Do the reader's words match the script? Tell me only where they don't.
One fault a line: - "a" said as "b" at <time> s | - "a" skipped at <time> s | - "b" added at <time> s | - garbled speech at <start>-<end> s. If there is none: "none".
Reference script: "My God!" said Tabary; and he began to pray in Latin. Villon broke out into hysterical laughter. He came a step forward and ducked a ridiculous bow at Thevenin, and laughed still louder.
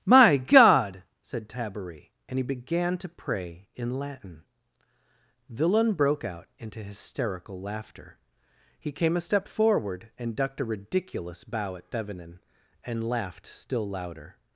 none